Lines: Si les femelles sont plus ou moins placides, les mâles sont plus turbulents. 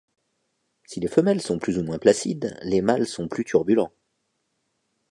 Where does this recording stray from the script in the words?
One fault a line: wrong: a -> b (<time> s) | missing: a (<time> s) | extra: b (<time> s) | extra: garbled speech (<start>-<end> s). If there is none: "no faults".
no faults